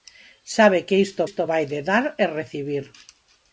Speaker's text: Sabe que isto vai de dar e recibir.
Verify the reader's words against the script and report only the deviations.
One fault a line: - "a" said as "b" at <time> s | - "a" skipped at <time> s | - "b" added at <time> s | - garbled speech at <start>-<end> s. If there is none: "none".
- "isto" added at 1.3 s